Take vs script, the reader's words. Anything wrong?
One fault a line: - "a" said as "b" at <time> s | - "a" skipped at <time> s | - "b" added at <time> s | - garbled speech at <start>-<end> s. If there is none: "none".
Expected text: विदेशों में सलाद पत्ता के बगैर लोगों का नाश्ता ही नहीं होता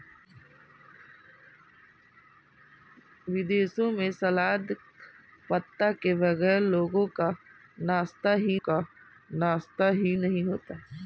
- "का नाश्ता ही" added at 8.6 s